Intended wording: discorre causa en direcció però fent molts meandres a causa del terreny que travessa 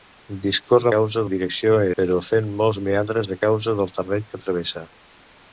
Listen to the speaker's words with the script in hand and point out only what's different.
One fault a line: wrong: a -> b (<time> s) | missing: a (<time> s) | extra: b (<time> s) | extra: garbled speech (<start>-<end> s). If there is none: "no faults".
no faults